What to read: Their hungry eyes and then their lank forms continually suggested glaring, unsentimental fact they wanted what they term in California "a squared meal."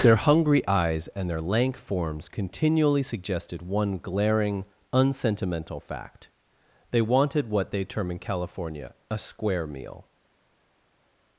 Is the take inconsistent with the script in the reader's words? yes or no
yes